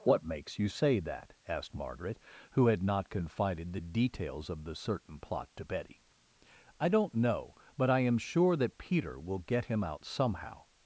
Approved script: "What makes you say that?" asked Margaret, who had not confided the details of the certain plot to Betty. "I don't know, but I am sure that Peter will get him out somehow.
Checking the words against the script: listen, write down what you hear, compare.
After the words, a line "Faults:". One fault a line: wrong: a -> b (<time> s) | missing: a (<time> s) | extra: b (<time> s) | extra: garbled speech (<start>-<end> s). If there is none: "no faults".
"What makes you say that?" asked Margaret, who had not confided the details of the certain plot to Betty. "I don't know, but I am sure that Peter will get him out somehow.
Faults:
no faults